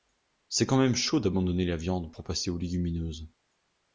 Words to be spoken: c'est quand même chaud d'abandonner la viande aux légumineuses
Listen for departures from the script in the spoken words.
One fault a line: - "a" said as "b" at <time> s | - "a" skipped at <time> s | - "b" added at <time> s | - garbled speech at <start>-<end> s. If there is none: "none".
- "pour passer" added at 2.1 s